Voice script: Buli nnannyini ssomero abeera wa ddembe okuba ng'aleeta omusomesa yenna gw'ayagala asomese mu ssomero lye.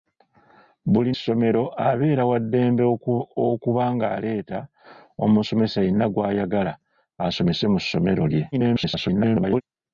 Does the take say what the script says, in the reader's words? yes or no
no